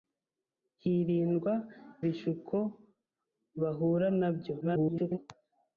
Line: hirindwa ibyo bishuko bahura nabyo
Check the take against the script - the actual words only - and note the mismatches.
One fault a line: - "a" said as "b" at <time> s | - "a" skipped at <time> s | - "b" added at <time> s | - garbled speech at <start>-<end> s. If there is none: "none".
- "ibyo" skipped at 1.5 s
- garbled speech at 4.6-5.2 s